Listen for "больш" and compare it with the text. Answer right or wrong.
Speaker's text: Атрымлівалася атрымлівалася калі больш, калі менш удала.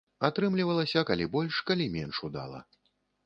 right